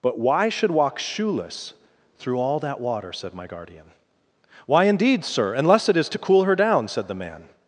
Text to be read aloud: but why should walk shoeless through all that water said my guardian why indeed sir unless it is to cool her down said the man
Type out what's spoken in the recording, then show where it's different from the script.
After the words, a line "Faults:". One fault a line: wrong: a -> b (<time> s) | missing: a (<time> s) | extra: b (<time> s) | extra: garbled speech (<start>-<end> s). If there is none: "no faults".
but why should walk shoeless through all that water said my guardian why indeed sir unless it is to cool her down said the man
Faults:
no faults